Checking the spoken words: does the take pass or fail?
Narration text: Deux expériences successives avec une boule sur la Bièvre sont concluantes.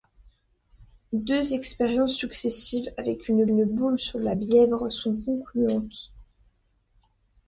fail